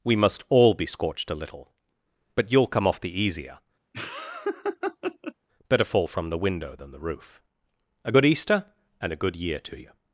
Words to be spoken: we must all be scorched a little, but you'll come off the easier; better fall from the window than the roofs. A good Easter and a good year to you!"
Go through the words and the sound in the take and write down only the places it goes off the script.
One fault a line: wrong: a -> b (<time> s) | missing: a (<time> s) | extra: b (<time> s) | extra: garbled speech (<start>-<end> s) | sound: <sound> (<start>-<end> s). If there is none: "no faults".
sound: laugh (3.9-5.3 s)
wrong: roofs -> roof (7.0 s)